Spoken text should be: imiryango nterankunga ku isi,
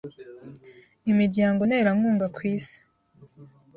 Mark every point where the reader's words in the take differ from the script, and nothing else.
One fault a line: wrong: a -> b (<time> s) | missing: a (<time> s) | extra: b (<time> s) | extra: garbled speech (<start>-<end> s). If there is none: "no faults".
no faults